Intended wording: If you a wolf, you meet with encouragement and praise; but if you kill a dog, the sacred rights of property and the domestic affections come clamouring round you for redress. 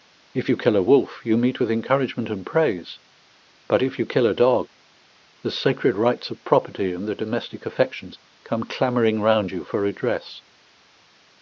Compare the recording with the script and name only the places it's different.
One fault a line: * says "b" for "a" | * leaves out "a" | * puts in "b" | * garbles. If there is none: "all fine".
* puts in "kill"